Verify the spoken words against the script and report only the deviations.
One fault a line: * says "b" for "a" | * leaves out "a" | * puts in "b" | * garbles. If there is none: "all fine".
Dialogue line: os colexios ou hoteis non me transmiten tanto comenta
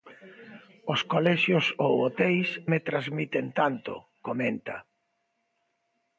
* leaves out "non"